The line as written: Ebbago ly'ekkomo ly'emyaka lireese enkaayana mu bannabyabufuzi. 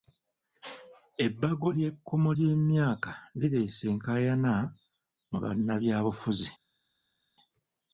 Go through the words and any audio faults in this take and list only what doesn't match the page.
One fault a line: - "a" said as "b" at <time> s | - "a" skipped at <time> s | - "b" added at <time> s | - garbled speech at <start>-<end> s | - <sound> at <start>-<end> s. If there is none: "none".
none